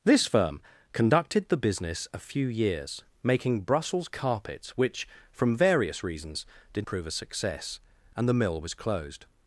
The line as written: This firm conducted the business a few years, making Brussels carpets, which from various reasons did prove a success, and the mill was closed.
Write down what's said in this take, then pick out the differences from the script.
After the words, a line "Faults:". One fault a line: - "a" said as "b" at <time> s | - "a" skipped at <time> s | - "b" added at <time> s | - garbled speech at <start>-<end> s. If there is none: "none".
This firm conducted the business a few years, making Brussels carpets, which from various reasons did prove a success, and the mill was closed.
Faults:
none